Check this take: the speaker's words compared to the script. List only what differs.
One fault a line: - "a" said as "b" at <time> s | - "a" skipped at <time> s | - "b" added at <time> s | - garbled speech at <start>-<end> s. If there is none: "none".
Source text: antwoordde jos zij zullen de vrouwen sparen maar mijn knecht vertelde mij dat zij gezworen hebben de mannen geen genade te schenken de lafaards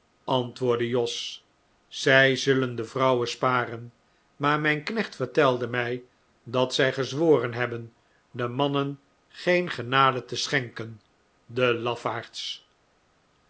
none